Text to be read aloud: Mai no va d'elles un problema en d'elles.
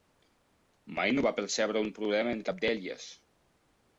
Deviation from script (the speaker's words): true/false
true